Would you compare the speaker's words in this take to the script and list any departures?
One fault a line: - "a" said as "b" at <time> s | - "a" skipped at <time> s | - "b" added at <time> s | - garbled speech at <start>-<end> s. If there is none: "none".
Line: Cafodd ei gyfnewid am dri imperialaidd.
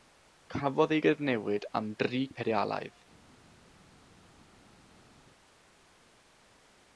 none